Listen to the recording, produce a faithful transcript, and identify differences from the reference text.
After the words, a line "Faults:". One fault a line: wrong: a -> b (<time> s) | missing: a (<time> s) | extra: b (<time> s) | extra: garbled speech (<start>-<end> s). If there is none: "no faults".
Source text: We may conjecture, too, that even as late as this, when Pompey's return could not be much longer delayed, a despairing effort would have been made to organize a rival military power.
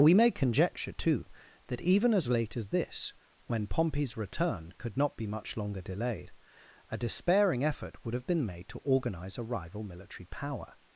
We may conjecture, too, that even as late as this, when Pompey's return could not be much longer delayed, a despairing effort would have been made to organize a rival military power.
Faults:
no faults